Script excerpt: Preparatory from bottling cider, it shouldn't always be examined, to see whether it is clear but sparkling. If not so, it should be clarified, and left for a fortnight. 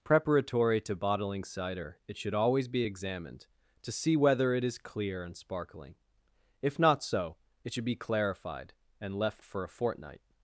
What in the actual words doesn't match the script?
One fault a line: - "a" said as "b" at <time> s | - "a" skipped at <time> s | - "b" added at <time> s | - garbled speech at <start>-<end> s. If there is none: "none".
- "from" said as "to" at 0.8 s
- "shouldn't" said as "should" at 2.2 s
- "but" said as "and" at 5.2 s